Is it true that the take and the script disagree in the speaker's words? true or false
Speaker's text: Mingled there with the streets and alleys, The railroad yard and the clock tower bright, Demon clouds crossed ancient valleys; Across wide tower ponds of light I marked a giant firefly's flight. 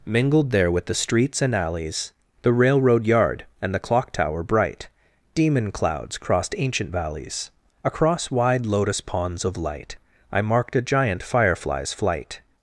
true